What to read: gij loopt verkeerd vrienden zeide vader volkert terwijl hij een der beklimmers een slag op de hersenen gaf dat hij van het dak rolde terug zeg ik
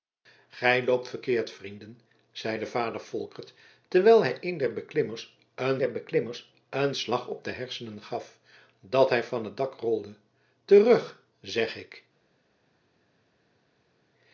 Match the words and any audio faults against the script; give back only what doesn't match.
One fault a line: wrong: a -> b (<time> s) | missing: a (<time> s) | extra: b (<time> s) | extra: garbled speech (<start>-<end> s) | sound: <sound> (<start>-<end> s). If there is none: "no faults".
extra: der beklimmers een (5.8 s)